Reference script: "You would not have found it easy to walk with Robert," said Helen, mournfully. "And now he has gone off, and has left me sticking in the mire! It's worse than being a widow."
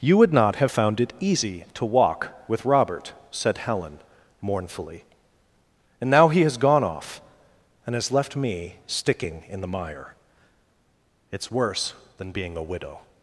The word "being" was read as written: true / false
true